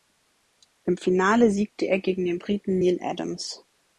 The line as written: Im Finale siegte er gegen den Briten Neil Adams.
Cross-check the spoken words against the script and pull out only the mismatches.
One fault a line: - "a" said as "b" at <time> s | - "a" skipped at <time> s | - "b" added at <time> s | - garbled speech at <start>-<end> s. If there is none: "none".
none